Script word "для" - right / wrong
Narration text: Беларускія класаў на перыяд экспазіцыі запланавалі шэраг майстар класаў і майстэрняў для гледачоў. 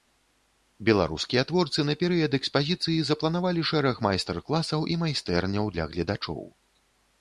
right